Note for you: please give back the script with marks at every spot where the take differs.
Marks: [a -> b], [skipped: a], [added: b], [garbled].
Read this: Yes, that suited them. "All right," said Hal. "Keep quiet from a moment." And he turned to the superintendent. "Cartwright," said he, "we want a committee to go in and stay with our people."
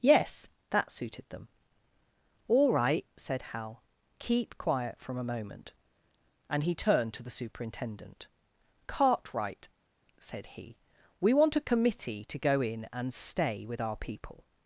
Yes, that suited them. "All right," said Hal. "Keep quiet from a moment." And he turned to the superintendent. "Cartwright," said he, "we want a committee to go in and stay with our people."